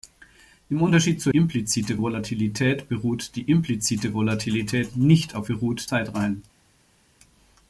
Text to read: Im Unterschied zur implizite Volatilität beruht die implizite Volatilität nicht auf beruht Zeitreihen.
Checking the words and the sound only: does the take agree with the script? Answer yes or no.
yes